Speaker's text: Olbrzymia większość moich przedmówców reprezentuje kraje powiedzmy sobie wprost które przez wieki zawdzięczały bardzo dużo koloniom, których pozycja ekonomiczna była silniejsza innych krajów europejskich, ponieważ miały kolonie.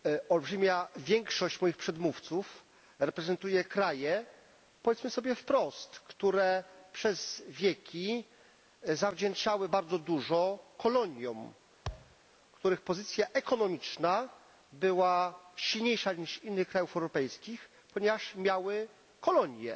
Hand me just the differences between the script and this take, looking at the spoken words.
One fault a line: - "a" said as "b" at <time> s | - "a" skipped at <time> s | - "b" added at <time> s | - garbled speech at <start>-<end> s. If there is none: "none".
- "niż" added at 16.1 s